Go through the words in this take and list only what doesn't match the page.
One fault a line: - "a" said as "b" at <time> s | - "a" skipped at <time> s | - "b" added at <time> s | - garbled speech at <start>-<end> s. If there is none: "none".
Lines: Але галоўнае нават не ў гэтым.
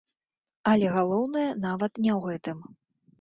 none